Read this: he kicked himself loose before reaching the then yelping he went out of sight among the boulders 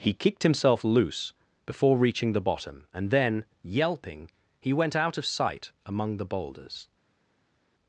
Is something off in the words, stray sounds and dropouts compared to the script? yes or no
yes